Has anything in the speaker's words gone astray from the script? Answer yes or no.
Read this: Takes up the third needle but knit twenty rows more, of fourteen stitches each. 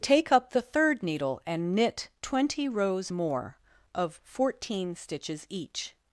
yes